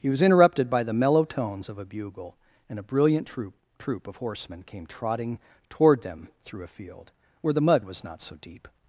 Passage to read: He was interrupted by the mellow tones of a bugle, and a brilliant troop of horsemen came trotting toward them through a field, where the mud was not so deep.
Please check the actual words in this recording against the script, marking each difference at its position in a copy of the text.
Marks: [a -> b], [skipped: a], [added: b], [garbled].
He was interrupted by the mellow tones of a bugle, and a brilliant troop [added: troop] of horsemen came trotting toward them through a field, where the mud was not so deep.